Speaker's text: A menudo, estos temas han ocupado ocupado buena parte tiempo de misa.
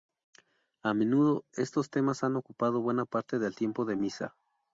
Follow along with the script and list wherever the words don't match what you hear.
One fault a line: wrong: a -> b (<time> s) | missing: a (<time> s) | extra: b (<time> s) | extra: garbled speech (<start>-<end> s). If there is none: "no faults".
missing: ocupado (2.8 s)
extra: del (3.4 s)